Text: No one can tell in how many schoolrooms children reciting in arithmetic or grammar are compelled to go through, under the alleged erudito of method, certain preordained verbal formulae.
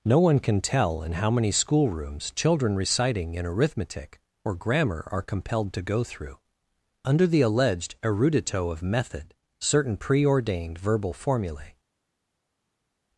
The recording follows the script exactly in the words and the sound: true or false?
true